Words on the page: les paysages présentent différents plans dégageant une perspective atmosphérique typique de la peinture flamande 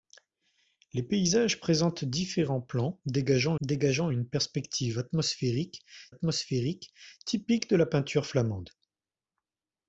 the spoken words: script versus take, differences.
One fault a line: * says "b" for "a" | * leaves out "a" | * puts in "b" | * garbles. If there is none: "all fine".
* puts in "dégageant"
* puts in "atmosphérique"